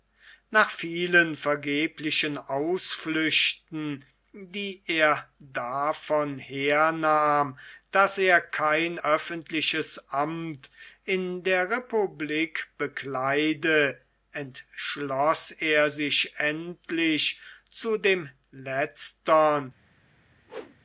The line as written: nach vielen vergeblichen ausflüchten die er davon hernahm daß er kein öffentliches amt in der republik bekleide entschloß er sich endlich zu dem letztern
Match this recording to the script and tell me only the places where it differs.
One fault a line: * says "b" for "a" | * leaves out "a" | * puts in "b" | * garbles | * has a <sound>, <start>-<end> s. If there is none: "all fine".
* has a whoosh, 20.5-20.8 s